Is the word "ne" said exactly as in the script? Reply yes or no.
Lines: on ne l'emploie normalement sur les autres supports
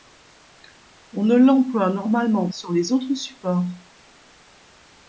yes